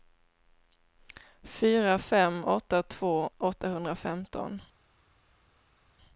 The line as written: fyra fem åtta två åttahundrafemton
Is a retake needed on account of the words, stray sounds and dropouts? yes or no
no